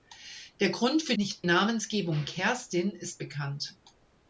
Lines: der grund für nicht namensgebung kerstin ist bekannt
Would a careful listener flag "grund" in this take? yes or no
no